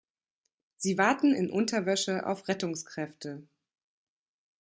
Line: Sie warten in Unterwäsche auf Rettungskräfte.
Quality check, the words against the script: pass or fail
pass